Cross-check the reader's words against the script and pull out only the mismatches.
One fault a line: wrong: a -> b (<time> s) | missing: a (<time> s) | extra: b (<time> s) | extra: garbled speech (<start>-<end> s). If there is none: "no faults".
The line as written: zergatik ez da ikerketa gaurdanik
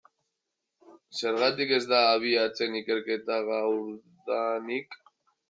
extra: abiatzen (2.1 s)